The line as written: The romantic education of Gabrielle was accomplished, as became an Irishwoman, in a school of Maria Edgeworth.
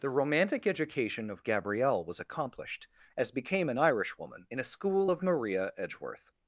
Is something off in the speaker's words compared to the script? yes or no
no